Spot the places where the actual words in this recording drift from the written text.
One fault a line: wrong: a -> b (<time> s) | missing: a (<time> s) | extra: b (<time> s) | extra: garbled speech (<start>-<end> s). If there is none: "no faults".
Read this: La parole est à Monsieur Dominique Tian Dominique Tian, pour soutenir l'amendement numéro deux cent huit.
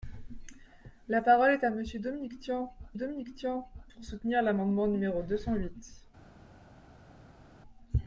no faults